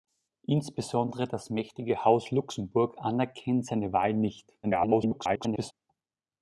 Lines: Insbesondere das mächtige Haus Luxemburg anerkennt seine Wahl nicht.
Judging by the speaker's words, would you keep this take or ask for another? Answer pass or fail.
fail